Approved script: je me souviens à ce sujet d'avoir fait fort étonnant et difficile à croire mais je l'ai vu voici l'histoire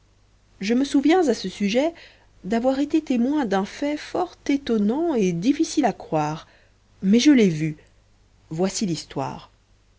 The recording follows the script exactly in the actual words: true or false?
false